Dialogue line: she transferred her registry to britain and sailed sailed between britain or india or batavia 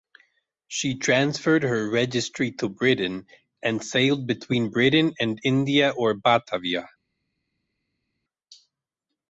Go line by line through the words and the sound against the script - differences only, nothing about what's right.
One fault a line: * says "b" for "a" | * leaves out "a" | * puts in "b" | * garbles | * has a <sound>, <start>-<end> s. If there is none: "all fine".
* leaves out "sailed"
* says "and" for "or"